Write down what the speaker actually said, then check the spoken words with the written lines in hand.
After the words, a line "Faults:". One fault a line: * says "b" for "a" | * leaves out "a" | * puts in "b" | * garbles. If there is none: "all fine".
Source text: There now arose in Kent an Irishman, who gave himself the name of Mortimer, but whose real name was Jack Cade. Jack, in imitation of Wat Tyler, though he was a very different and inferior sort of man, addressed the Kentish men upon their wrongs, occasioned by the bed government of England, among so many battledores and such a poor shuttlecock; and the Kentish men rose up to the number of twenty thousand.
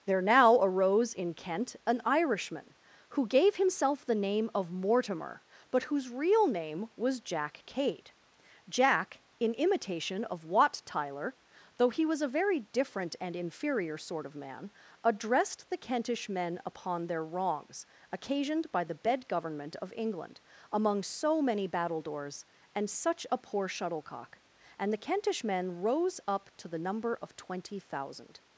There now arose in Kent an Irishman, who gave himself the name of Mortimer, but whose real name was Jack Cade. Jack, in imitation of Wat Tyler, though he was a very different and inferior sort of man, addressed the Kentish men upon their wrongs, occasioned by the bed government of England, among so many battledores and such a poor shuttlecock; and the Kentish men rose up to the number of twenty thousand.
Faults:
all fine